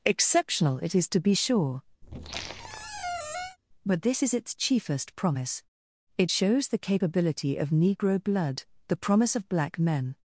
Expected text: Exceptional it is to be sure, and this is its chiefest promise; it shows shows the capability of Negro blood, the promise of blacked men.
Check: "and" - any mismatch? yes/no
yes